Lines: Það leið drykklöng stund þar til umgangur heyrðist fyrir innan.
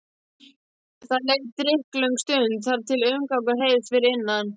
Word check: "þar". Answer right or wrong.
right